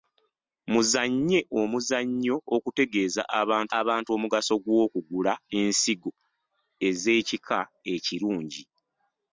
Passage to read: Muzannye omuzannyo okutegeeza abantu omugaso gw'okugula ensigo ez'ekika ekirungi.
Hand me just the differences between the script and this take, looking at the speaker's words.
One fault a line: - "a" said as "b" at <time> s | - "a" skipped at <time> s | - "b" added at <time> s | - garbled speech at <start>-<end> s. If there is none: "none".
- "abantu" added at 3.8 s